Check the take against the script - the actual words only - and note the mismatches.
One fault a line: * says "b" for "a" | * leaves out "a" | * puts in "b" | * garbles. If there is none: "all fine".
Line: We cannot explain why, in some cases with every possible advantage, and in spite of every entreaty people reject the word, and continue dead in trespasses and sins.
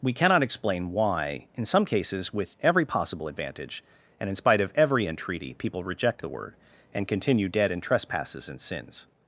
all fine